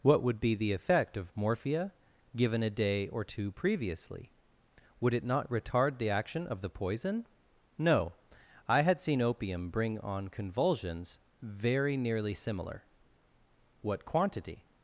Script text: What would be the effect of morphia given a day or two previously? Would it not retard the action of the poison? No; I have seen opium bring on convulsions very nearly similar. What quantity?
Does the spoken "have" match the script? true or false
false